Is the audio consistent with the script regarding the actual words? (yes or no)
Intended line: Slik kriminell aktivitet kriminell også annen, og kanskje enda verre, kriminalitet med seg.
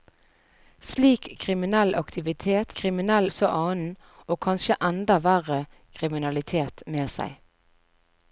yes